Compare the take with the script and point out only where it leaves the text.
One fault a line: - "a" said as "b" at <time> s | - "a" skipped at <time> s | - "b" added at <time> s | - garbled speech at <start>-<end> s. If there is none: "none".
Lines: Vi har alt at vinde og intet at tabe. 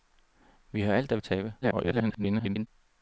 - "vinde og intet" skipped at 1.2 s
- garbled speech at 1.6-2.7 s